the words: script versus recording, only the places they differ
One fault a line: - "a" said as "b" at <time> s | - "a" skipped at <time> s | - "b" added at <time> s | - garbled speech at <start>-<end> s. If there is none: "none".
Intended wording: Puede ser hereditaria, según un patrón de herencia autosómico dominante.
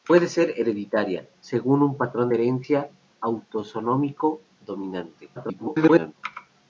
- garbled speech at 5.4-6.1 s